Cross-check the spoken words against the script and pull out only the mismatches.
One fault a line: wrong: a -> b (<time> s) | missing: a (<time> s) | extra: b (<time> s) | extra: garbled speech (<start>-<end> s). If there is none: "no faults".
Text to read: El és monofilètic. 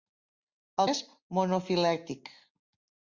no faults